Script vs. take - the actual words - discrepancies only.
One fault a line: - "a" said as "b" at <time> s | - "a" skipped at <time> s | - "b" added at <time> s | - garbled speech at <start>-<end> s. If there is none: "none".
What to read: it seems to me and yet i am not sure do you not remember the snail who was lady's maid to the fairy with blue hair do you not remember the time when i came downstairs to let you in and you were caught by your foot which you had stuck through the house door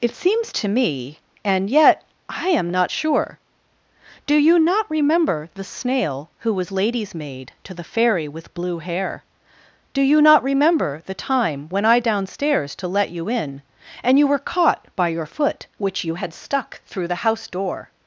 - "came" skipped at 12.0 s